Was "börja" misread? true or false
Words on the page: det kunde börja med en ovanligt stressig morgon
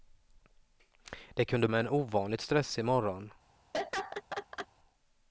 true